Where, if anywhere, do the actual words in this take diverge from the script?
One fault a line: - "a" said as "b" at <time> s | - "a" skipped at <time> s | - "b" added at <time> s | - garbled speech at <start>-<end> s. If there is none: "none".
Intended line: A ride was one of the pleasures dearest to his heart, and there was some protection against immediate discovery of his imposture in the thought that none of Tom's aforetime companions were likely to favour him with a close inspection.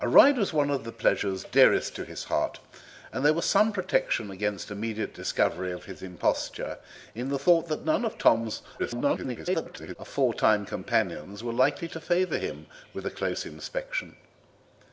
- garbled speech at 8.8-10.0 s